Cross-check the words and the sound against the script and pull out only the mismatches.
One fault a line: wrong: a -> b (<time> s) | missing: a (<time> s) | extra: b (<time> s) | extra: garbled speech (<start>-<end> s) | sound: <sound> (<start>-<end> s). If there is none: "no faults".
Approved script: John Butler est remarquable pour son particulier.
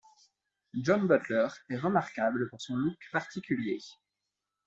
extra: look (2.8 s)